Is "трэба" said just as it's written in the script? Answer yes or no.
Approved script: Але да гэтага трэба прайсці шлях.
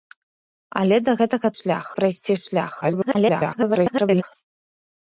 no